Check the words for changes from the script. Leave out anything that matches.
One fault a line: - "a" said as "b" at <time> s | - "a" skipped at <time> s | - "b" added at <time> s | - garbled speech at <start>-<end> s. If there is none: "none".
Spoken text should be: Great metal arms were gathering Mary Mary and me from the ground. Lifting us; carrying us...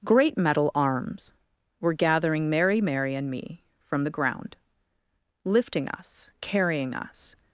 none